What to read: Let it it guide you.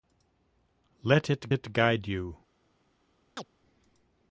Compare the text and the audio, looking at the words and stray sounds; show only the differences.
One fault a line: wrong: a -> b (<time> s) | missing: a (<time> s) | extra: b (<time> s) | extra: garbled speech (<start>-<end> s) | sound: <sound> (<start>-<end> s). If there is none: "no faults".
sound: chirp (3.4-3.5 s)